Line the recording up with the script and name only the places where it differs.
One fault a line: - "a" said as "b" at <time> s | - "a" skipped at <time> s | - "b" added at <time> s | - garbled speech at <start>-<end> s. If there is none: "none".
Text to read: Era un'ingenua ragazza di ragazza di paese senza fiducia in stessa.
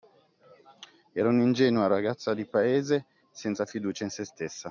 - "ragazza di" skipped at 2.5 s
- "se" added at 4.1 s